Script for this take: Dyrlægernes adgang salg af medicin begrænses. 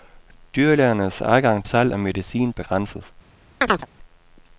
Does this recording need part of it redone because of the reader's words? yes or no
no